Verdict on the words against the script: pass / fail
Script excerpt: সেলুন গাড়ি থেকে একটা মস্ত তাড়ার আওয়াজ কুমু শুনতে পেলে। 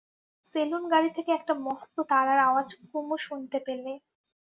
pass